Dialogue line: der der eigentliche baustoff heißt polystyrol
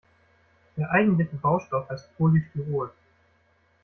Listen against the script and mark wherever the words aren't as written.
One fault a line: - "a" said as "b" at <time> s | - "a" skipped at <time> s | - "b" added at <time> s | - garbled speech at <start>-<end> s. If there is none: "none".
- "der" skipped at 0.9 s